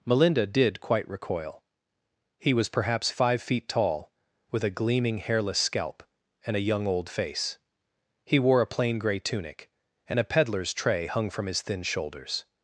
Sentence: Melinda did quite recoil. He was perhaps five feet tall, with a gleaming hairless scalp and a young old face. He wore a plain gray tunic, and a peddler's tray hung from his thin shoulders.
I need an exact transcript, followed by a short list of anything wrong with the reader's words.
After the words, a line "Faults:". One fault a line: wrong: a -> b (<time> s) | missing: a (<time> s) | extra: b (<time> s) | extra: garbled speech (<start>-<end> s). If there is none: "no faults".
Melinda did quite recoil. He was perhaps five feet tall, with a gleaming hairless scalp and a young old face. He wore a plain gray tunic, and a peddler's tray hung from his thin shoulders.
Faults:
no faults